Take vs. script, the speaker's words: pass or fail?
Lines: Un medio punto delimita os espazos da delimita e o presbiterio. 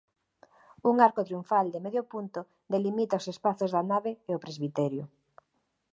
fail